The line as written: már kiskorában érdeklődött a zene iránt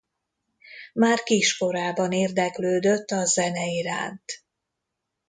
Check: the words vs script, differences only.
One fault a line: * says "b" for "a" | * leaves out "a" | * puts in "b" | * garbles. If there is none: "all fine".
all fine